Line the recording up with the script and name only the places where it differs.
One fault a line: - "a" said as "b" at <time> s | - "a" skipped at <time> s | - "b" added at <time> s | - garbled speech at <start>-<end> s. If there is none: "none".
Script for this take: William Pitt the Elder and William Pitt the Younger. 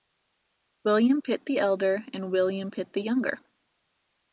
none